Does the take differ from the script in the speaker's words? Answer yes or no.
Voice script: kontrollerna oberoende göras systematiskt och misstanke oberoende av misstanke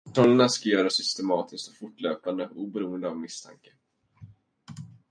yes